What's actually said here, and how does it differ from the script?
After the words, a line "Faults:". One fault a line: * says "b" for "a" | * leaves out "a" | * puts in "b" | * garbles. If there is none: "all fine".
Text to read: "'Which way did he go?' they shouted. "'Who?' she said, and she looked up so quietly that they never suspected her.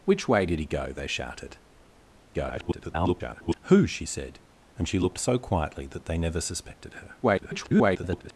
"'Which way did he go?' they shouted. [garbled] "'Who?' she said, and she looked so quietly that they never suspected her. [garbled]
Faults:
* garbles
* leaves out "up"
* garbles